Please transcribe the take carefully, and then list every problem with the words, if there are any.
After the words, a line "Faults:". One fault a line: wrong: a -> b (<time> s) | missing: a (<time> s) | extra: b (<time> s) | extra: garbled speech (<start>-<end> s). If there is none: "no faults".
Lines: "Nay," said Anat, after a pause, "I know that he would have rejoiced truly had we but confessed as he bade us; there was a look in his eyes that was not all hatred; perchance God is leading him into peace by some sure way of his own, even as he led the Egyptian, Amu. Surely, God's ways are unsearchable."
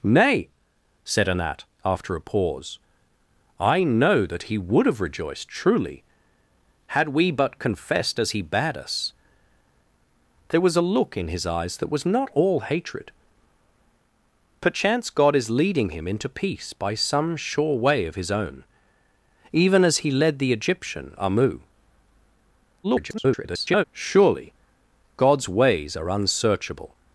"Nay," said Anat, after a pause, "I know that he would have rejoiced truly had we but confessed as he bade us; there was a look in his eyes that was not all hatred; perchance God is leading him into peace by some sure way of his own, even as he led the Egyptian, Amu. [garbled] Surely, God's ways are unsearchable."
Faults:
extra: garbled speech (22.8-23.8 s)